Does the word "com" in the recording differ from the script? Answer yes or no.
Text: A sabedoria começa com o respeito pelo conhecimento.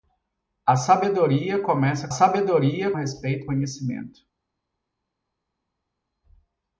yes